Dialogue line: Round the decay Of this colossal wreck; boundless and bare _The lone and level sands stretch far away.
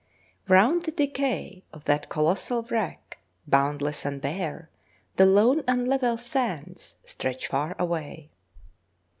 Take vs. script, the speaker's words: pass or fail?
fail